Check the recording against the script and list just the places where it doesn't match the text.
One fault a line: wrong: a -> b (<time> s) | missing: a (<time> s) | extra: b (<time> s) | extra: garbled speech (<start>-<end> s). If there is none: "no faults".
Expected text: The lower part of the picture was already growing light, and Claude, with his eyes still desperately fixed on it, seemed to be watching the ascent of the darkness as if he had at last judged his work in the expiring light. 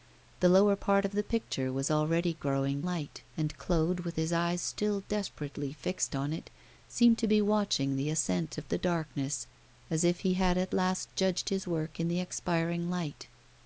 no faults